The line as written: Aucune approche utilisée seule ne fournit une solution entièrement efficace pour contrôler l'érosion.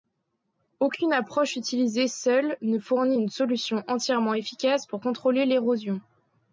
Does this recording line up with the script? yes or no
yes